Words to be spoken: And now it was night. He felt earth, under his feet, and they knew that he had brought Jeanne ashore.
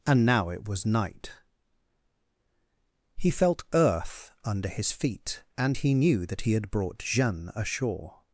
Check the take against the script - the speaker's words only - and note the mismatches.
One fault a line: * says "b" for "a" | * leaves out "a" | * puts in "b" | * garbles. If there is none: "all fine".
* says "he" for "they"